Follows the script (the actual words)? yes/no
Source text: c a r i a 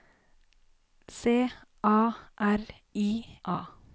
yes